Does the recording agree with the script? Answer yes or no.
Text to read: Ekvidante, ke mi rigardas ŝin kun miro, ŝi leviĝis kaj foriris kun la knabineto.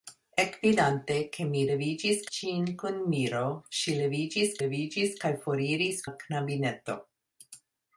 no